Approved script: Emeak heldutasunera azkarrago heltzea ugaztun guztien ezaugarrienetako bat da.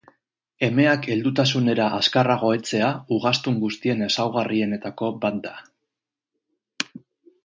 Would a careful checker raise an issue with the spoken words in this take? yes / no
no